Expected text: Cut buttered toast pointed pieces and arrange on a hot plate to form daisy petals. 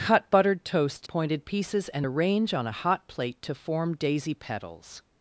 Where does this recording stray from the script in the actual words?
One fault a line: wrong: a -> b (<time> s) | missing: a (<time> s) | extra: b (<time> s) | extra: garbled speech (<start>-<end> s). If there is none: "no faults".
no faults